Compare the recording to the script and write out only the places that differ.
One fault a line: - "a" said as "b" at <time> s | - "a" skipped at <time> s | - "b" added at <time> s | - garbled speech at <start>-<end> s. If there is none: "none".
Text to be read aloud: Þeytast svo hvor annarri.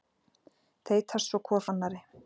none